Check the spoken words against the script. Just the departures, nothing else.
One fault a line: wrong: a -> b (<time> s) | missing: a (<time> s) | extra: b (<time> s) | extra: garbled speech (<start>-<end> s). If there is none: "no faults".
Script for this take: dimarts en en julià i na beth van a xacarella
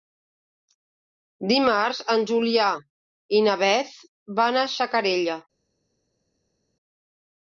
missing: en (2.2 s)